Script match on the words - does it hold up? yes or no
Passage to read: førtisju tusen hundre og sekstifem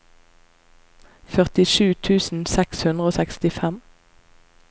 no